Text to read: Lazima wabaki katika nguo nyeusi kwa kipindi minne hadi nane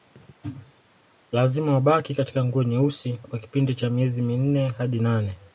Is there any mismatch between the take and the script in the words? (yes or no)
yes